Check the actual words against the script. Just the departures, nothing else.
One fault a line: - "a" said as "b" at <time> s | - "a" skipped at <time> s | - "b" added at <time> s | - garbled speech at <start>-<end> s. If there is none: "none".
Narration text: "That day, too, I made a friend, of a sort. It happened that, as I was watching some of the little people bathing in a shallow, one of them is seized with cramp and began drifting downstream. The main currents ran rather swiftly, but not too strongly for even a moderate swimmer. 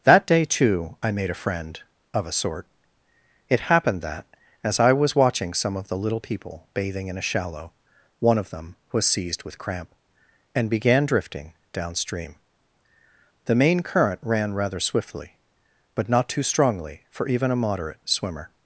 - "is" said as "was" at 8.9 s
- "currents" said as "current" at 13.8 s